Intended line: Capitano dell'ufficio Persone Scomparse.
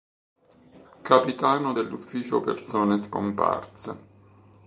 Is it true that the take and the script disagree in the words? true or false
false